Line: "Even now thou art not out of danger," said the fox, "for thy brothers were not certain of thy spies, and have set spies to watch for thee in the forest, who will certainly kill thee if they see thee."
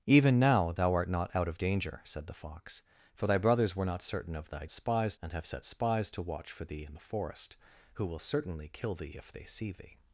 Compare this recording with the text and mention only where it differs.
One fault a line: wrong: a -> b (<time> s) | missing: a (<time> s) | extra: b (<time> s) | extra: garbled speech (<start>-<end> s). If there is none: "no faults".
no faults